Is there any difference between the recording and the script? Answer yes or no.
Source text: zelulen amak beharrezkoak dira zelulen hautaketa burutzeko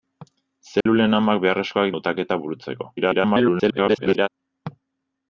yes